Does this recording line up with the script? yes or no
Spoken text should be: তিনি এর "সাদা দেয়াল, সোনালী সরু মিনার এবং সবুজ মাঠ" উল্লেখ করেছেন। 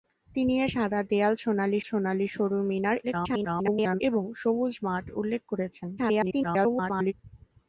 no